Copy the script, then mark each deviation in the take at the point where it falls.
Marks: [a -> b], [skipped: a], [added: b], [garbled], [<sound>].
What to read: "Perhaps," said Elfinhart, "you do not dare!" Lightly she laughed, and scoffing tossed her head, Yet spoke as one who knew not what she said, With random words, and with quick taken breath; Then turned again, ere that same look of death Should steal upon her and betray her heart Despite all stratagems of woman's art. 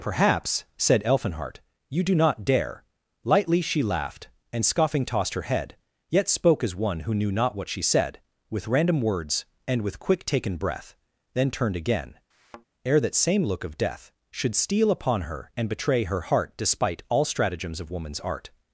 "Perhaps," said Elfinhart, "you do not dare!" Lightly she laughed, and scoffing tossed her head, Yet spoke as one who knew not what she said, With random words, and with quick taken breath; Then turned again, [thud] ere that same look of death Should steal upon her and betray her heart Despite all stratagems of woman's art.